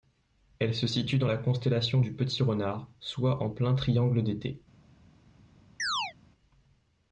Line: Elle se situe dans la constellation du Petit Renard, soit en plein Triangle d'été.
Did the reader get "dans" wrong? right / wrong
right